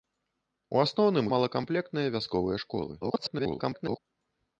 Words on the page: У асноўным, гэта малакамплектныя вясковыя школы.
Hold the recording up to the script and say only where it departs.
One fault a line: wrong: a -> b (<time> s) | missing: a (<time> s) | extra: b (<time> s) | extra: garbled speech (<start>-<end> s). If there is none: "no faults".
missing: гэта (1.3 s)
extra: garbled speech (3.0-4.0 s)